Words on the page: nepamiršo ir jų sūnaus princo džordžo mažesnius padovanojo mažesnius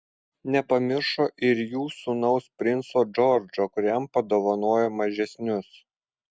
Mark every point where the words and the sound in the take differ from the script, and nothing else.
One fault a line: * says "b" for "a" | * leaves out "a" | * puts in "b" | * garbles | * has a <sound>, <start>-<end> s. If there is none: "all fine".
* says "kuriam" for "mažesnius"